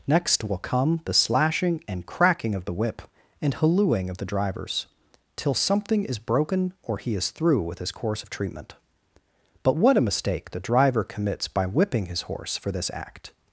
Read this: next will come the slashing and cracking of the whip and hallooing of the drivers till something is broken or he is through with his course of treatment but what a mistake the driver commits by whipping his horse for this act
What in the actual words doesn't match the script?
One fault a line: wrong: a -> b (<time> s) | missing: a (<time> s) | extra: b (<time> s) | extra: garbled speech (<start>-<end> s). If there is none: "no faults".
no faults